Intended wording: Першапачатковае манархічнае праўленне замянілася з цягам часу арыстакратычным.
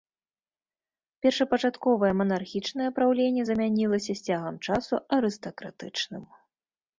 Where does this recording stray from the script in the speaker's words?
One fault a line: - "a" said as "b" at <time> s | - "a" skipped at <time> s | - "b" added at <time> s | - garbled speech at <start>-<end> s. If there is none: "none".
none